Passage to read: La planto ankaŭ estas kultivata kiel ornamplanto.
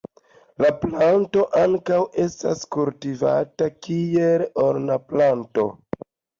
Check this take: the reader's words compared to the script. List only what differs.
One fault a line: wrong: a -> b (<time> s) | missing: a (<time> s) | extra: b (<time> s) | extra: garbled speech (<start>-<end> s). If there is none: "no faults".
no faults